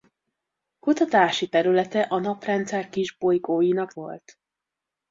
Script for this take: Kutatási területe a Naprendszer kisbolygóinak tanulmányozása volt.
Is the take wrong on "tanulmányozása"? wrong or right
wrong